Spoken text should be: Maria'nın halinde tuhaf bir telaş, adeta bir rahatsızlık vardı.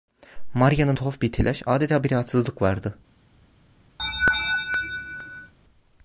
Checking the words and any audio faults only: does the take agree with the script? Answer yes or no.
no